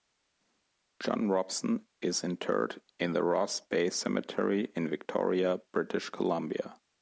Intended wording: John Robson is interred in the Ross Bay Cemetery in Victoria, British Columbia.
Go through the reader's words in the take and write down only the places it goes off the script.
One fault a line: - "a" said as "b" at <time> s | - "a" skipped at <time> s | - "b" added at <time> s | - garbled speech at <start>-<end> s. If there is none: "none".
none